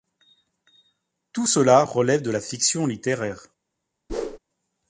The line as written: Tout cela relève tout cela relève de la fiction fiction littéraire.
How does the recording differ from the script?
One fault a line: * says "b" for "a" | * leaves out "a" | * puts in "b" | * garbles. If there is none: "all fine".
* leaves out "tout cela relève"
* leaves out "fiction"